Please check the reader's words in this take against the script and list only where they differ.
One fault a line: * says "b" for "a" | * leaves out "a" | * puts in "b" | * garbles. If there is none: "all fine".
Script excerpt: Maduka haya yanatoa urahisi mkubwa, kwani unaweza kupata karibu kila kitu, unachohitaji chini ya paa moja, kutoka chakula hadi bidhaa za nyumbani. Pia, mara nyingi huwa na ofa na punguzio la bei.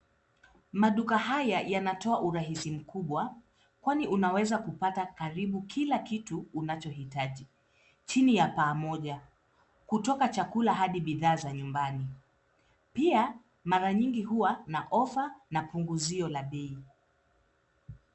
all fine